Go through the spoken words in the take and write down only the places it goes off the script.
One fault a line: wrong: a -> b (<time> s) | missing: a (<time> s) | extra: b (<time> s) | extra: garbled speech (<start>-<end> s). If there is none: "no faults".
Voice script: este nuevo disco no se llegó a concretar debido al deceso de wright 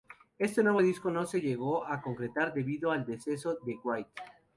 no faults